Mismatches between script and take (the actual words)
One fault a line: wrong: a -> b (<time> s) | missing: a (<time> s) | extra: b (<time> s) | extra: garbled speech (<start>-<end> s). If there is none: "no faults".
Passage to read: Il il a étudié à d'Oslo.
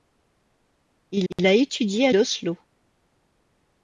no faults